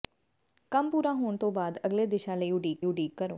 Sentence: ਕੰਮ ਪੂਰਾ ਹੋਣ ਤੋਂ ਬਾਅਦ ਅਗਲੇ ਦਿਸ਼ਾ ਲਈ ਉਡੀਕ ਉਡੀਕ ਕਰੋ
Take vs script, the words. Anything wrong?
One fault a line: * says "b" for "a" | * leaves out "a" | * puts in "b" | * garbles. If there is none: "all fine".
all fine